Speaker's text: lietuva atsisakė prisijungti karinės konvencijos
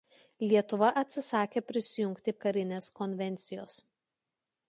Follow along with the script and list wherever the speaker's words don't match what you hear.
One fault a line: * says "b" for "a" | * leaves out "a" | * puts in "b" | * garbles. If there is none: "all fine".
all fine